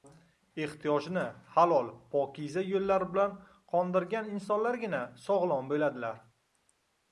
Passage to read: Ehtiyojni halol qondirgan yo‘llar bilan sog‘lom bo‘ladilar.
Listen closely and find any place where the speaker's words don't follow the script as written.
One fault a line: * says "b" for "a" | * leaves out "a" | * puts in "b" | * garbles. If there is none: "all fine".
* says "pokiza" for "qondirgan"
* puts in "qondirgan insonlargina"